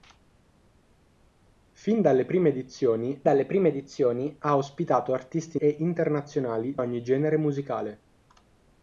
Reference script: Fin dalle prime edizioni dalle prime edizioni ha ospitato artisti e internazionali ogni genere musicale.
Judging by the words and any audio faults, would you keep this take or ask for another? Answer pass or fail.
pass